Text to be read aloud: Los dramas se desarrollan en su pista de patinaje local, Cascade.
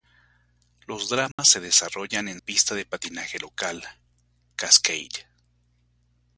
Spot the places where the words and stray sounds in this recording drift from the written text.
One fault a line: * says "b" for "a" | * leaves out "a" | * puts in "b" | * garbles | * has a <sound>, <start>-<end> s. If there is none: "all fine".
* has a dropout, 1.3-1.4 s
* leaves out "su"